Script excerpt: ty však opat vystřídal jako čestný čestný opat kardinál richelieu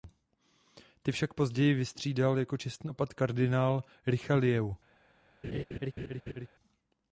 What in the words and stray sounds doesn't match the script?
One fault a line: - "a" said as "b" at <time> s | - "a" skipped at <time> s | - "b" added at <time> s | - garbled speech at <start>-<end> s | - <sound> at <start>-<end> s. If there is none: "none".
- "opat" said as "později" at 1.3 s
- "čestný" skipped at 2.9 s
- laugh at 5.4-6.5 s